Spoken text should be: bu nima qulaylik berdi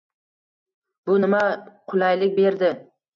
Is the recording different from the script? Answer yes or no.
no